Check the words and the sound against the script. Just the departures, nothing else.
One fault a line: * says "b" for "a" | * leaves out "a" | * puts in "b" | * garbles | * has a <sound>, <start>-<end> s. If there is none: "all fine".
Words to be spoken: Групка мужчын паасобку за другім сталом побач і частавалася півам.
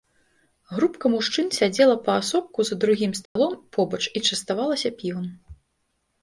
* puts in "сядзела"
* has a dropout, 3.3-3.4 s